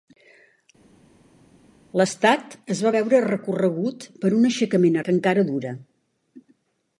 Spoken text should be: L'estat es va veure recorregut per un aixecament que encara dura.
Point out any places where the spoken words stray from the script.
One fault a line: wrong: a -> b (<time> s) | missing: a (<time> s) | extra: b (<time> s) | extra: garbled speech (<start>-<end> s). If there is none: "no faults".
no faults